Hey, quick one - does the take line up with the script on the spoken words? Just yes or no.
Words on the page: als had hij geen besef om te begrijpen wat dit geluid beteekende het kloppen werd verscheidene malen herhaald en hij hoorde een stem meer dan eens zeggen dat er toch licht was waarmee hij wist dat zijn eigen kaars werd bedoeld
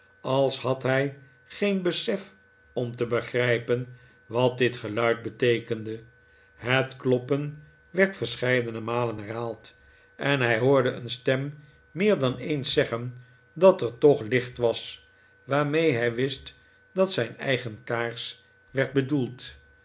yes